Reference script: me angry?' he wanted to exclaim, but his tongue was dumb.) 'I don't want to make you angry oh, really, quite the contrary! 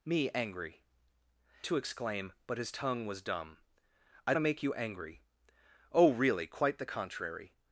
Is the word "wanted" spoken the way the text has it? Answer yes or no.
no